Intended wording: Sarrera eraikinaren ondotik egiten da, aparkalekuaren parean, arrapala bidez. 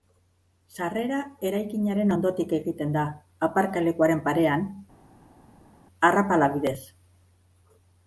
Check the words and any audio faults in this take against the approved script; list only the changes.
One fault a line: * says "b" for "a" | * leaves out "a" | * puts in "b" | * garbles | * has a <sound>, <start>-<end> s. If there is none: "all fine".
all fine